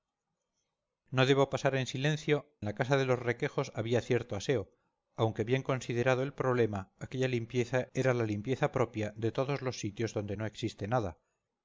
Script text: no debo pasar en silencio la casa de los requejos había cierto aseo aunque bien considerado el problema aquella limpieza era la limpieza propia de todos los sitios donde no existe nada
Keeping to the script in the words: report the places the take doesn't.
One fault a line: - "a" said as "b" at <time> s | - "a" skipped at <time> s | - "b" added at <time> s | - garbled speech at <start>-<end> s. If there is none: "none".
none